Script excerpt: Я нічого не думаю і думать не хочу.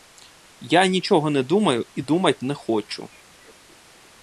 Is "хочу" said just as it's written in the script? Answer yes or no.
yes